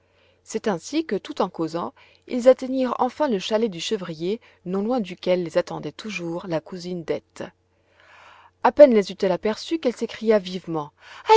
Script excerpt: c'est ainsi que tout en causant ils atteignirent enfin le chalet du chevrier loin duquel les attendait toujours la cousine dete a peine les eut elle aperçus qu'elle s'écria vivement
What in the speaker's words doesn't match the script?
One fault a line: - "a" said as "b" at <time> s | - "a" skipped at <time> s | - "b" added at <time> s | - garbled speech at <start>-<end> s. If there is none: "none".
- "non" added at 4.7 s